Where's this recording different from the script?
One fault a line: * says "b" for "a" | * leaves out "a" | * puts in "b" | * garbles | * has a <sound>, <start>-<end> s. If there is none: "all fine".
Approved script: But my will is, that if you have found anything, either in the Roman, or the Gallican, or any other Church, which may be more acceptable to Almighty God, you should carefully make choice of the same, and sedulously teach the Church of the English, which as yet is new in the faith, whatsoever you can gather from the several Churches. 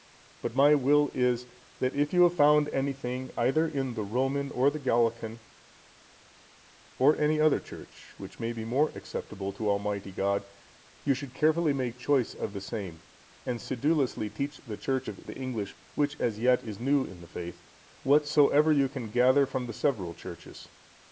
all fine